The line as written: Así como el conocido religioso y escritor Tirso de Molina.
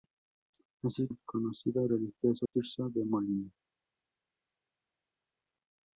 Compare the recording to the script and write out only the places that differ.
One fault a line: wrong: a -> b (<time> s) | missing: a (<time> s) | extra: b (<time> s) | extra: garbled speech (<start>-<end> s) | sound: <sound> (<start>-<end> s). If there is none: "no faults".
missing: como (1.1 s)
missing: y escritor (2.5 s)